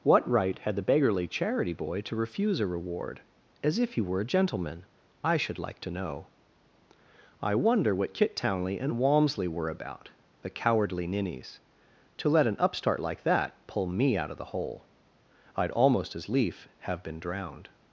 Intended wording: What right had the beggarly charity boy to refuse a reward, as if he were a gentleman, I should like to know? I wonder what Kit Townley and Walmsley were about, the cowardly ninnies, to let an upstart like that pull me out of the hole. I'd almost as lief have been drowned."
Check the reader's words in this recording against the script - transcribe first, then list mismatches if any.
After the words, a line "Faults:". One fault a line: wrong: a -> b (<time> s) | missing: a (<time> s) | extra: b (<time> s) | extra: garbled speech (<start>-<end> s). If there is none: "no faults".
What right had the beggarly charity boy to refuse a reward, as if he were a gentleman, I should like to know? I wonder what Kit Townley and Walmsley were about, the cowardly ninnies, to let an upstart like that pull me out of the hole. I'd almost as lief have been drowned."
Faults:
no faults